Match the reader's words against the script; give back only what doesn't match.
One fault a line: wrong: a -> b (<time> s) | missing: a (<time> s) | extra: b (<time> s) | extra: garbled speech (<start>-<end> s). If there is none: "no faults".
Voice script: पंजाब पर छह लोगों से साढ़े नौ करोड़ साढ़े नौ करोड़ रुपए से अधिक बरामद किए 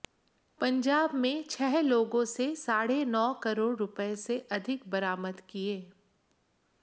wrong: पर -> में (1.1 s)
missing: साढ़े नौ करोड़ (3.7 s)